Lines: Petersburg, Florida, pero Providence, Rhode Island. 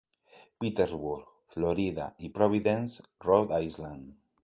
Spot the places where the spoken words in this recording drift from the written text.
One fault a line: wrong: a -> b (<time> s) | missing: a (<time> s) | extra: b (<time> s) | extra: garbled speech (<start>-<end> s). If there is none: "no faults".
wrong: pero -> y (2.2 s)